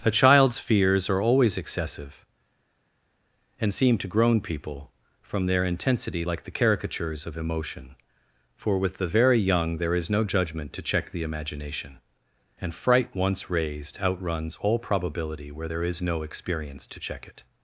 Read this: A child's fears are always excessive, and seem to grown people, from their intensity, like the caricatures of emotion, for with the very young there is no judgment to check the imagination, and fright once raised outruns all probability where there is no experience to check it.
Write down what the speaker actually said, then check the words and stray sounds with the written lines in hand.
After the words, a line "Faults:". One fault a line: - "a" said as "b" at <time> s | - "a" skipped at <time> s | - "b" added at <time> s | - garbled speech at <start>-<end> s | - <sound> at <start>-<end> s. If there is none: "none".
A child's fears are always excessive, and seem to grown people, from their intensity, like the caricatures of emotion, for with the very young there is no judgment to check the imagination, and fright once raised outruns all probability where there is no experience to check it.
Faults:
none